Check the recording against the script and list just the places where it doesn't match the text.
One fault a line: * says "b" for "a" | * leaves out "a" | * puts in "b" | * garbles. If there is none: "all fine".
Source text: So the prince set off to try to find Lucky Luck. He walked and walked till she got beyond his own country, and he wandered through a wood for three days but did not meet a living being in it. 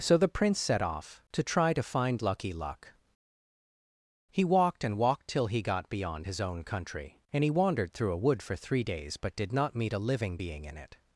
* says "he" for "she"